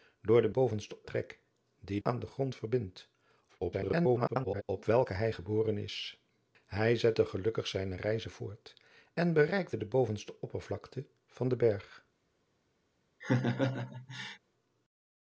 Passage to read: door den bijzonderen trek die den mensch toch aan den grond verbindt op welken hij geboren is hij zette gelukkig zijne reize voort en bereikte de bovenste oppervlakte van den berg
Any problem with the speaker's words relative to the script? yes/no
yes